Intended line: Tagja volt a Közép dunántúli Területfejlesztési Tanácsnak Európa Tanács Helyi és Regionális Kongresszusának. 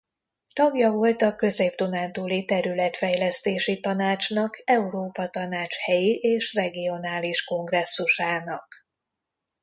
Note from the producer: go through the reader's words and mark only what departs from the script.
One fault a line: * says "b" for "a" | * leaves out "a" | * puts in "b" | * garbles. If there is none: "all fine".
all fine